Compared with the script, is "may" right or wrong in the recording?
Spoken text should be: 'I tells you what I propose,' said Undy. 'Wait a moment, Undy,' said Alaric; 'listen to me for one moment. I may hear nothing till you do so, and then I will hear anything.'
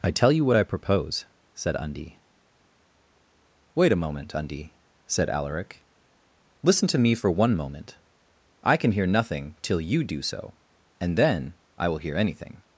wrong